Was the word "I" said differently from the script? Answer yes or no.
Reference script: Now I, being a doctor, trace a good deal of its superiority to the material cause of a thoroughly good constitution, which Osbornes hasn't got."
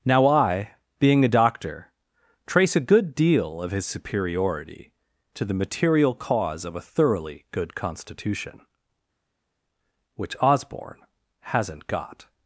no